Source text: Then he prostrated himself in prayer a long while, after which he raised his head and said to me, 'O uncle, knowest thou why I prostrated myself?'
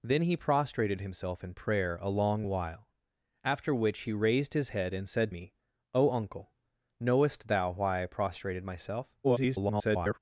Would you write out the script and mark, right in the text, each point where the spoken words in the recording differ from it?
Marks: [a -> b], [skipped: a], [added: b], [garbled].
Then he prostrated himself in prayer a long while, after which he raised his head and said [skipped: to] me, 'O uncle, knowest thou why I prostrated myself?' [garbled]